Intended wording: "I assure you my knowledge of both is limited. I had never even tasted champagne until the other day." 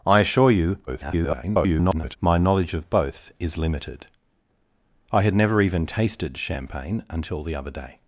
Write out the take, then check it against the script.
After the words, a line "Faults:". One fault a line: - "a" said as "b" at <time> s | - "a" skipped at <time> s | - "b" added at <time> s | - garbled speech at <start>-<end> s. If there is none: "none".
"I assure you [garbled] my knowledge of both is limited. I had never even tasted champagne until the other day."
Faults:
- garbled speech at 0.9-2.2 s